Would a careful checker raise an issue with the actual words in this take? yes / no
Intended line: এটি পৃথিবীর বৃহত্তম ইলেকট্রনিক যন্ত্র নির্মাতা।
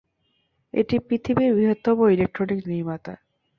yes